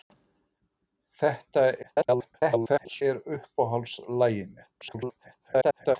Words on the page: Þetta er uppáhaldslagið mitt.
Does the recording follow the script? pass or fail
fail